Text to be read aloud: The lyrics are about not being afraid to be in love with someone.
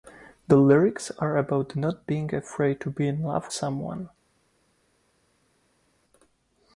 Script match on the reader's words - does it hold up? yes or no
no